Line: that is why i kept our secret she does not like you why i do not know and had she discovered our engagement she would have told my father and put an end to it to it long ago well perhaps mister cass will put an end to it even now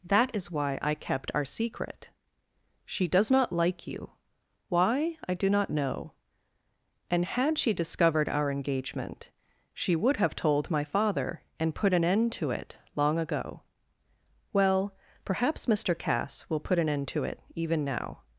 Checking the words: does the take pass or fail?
fail